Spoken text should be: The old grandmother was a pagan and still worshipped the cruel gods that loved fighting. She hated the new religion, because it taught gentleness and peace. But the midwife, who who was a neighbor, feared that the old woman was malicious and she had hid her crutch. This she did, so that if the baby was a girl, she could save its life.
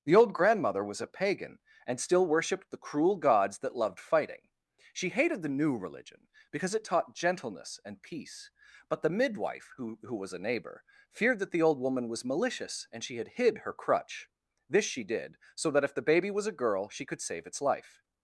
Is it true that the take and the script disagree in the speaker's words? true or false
false